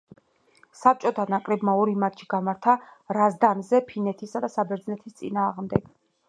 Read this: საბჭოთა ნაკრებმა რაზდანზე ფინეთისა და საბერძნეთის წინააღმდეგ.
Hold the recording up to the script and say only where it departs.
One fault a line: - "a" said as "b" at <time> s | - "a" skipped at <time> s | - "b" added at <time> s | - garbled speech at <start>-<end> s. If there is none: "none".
- "ორი მატჩი გამართა" added at 1.8 s